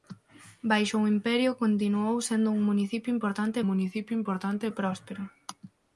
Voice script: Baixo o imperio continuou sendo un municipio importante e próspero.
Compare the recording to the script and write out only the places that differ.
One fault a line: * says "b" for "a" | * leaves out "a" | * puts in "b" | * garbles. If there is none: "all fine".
* puts in "municipio importante"